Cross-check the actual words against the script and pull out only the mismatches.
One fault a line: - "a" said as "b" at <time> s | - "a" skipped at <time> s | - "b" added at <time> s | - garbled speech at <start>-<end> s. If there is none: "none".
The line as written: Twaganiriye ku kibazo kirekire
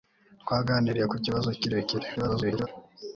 - garbled speech at 2.2-2.7 s